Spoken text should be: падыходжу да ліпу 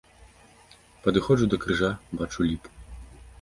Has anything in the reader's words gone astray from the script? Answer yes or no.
yes